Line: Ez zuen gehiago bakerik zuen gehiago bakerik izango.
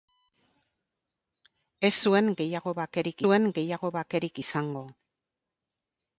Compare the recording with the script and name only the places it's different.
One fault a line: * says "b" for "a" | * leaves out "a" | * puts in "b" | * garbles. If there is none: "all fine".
all fine